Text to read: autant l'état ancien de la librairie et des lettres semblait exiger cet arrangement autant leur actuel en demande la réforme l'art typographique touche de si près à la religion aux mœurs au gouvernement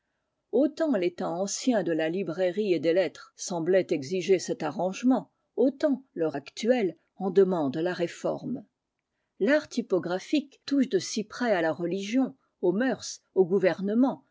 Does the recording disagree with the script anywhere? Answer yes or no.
no